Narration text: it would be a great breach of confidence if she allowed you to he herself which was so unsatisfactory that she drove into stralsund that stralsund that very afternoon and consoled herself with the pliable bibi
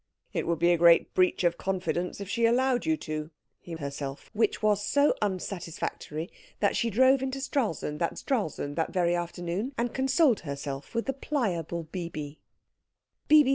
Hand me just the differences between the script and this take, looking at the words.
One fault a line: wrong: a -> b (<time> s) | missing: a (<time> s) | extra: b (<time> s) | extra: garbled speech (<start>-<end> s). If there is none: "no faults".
no faults